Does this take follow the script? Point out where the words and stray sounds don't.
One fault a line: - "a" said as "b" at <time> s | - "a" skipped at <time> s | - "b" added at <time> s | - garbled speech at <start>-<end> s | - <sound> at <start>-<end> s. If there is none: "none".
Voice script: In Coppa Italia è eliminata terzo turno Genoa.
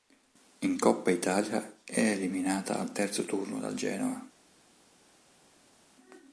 - "al" added at 2.8 s
- "dal" added at 3.6 s